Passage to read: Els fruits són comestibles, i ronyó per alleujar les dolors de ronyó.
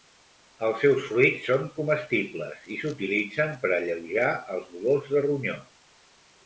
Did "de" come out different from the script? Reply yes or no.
no